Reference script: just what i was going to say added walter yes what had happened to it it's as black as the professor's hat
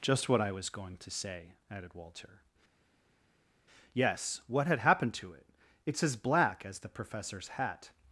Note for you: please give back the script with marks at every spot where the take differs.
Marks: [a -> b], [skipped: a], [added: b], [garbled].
just what i was going to say added walter yes what had happened to it it's as black as the professor's hat